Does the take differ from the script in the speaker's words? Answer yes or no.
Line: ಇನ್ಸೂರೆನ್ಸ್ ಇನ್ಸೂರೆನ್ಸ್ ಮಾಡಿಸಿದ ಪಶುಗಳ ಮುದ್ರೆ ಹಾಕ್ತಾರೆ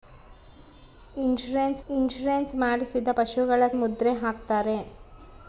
no